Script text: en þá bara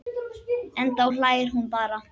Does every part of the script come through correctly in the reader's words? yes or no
no